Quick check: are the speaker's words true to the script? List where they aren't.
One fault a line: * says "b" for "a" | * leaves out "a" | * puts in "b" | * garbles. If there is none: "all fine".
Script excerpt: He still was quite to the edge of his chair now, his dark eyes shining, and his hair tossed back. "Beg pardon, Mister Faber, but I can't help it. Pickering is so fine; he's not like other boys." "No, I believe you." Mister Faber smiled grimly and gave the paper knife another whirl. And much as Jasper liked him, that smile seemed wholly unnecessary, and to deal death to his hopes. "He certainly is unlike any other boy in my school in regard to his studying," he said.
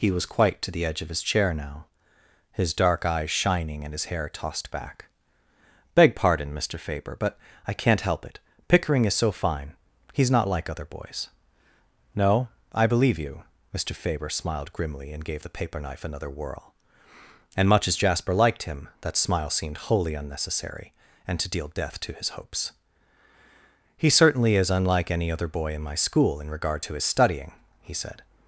* leaves out "still"